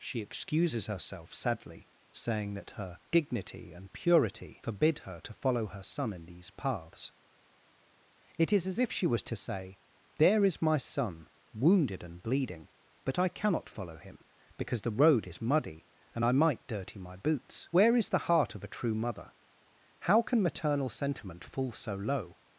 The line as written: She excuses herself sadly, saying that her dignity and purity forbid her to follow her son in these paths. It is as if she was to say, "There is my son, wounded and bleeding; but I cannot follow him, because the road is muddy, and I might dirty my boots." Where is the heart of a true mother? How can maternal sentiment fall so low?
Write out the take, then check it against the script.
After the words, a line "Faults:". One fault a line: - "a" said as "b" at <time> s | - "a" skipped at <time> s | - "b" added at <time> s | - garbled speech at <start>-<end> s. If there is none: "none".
She excuses herself sadly, saying that her dignity and purity forbid her to follow her son in these paths. It is as if she was to say, "There is my son, wounded and bleeding; but I cannot follow him, because the road is muddy, and I might dirty my boots." Where is the heart of a true mother? How can maternal sentiment fall so low?
Faults:
none